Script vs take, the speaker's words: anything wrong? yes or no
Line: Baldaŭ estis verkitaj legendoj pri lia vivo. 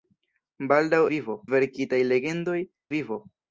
yes